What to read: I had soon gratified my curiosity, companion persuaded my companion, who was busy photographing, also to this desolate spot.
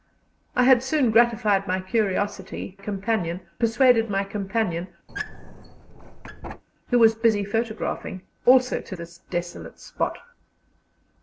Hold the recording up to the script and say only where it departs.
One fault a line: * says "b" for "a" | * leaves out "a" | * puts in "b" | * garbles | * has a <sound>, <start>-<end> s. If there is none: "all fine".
* has a squeak, 5.1-6.6 s